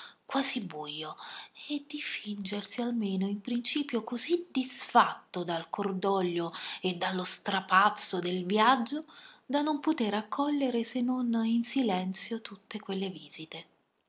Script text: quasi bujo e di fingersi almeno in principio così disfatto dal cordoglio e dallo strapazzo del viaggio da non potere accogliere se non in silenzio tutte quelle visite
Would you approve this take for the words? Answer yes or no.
yes